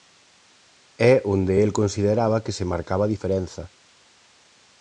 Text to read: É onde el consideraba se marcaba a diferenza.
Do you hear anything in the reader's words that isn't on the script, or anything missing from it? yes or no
yes